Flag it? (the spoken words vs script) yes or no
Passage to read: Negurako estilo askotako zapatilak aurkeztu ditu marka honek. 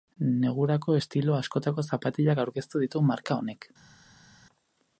no